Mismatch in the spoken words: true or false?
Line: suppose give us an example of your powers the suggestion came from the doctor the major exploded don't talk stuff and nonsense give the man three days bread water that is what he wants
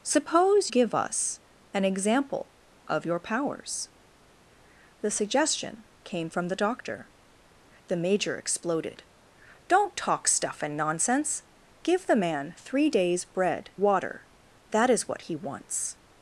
false